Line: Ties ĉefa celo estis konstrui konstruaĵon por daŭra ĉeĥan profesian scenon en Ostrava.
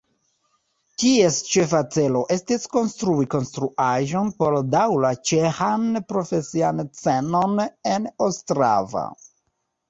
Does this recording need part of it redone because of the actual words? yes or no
no